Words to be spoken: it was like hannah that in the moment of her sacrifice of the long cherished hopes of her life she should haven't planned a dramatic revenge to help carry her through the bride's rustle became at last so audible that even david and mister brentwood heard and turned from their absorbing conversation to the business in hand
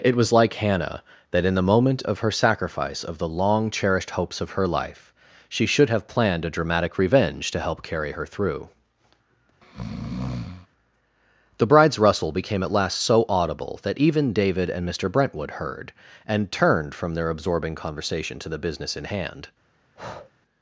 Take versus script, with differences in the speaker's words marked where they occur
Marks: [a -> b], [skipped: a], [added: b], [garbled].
it was like hannah that in the moment of her sacrifice of the long cherished hopes of her life she should [haven't -> have] planned a dramatic revenge to help carry her through the bride's rustle became at last so audible that even david and mister brentwood heard and turned from their absorbing conversation to the business in hand